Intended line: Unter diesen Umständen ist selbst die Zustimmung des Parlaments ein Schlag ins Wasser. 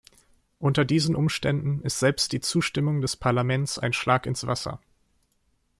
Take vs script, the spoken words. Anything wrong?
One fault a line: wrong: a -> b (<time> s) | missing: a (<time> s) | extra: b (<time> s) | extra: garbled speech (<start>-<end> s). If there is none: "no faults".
no faults